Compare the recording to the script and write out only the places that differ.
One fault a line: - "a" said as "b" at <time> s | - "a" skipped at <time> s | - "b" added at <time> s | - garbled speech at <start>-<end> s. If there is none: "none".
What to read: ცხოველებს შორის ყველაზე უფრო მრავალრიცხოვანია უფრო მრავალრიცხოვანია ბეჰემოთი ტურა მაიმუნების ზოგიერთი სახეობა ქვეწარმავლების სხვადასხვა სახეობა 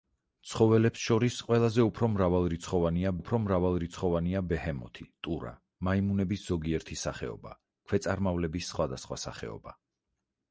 none